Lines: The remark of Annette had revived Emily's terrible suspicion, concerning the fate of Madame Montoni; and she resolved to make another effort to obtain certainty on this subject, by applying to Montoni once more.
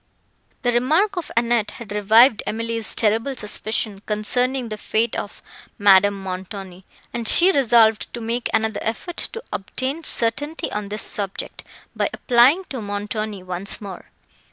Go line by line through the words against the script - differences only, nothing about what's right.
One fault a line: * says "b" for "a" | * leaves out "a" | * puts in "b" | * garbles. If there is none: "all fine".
all fine